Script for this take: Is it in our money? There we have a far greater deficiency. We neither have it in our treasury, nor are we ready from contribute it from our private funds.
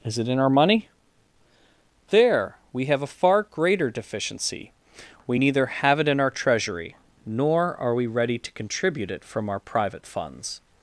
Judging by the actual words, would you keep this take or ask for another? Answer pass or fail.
fail